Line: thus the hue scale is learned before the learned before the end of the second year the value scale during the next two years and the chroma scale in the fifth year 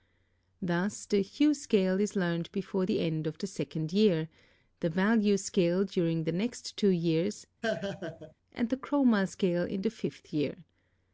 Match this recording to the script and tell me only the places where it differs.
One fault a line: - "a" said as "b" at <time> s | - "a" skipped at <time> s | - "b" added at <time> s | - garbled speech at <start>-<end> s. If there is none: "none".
- "learned before the" skipped at 3.0 s